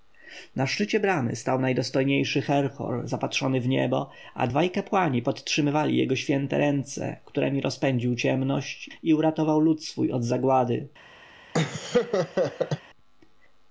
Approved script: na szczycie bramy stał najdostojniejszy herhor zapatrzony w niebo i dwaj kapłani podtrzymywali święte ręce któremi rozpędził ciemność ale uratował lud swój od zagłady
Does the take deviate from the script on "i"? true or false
true